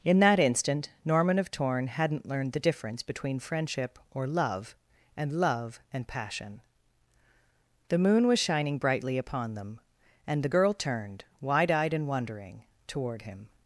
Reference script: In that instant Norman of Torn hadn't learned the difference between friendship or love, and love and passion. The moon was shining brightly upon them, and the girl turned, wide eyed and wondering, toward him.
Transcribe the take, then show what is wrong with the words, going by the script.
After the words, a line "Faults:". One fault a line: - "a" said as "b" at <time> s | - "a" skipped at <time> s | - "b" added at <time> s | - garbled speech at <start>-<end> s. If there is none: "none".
In that instant Norman of Torn hadn't learned the difference between friendship or love, and love and passion. The moon was shining brightly upon them, and the girl turned, wide eyed and wondering, toward him.
Faults:
none